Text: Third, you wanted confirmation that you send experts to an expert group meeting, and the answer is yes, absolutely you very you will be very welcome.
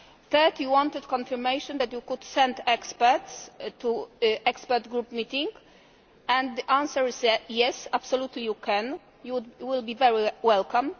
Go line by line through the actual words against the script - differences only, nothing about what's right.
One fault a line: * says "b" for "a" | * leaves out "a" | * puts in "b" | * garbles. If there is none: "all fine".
* puts in "could"
* says "can" for "very"